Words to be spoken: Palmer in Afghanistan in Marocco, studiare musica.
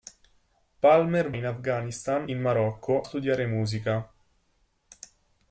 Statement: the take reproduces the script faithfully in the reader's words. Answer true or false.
true